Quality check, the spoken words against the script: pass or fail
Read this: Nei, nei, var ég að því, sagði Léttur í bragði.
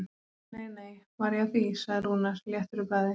fail